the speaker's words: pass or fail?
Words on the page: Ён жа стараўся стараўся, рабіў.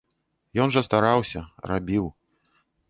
fail